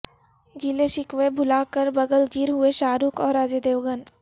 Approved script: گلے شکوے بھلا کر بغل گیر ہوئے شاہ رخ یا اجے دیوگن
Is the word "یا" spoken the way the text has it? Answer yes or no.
no